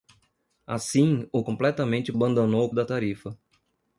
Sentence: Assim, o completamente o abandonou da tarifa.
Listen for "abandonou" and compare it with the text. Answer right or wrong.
right